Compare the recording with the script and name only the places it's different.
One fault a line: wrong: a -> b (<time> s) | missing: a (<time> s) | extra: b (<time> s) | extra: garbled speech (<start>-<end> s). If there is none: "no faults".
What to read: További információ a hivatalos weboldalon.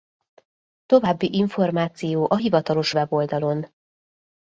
no faults